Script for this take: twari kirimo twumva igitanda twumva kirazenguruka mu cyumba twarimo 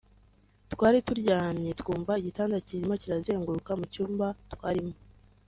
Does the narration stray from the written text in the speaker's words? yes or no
yes